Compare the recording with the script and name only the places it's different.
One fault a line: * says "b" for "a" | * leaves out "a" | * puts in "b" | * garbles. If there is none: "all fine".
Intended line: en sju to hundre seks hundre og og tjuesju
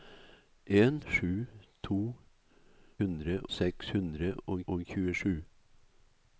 all fine